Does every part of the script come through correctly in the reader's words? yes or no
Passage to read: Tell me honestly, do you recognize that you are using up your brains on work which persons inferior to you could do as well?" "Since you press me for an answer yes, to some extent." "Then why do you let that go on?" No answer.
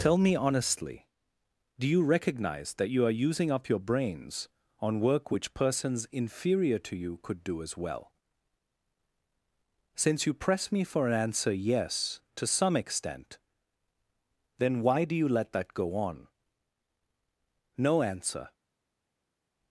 yes